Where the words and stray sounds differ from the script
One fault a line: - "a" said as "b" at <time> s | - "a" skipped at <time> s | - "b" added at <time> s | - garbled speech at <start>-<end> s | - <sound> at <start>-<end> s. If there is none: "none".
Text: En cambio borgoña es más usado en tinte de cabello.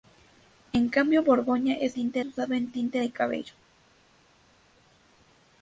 - "más" said as "tinte" at 1.9 s